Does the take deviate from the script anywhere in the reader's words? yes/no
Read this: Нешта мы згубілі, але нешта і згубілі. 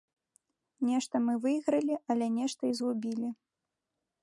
yes